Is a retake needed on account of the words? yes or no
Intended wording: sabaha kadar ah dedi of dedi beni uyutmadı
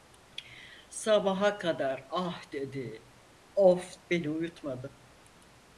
yes